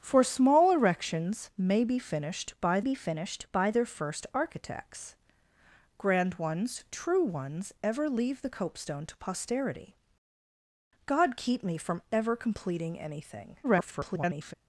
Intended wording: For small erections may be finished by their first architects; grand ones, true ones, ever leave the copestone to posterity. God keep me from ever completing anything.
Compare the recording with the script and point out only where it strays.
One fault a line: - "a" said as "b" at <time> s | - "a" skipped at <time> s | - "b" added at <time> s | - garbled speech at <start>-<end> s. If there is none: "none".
- "be finished by" added at 2.8 s
- garbled speech at 13.6-14.5 s